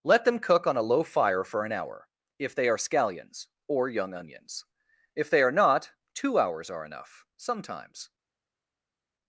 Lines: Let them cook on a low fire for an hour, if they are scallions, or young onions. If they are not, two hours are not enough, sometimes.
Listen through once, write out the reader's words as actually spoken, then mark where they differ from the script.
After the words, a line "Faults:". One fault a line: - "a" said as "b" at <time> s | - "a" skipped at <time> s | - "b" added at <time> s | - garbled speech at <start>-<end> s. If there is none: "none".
Let them cook on a low fire for an hour, if they are scallions, or young onions. If they are not, two hours are enough, sometimes.
Faults:
- "not" skipped at 6.8 s